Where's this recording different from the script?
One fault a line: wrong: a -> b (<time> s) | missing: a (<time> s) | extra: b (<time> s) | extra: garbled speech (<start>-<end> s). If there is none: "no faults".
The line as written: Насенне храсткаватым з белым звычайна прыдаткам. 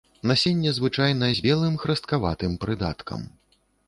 wrong: храсткаватым -> звычайна (0.8 s)
wrong: звычайна -> храсткаватым (1.8 s)